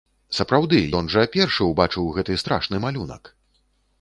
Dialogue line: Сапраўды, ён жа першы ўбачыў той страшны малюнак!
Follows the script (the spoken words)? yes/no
no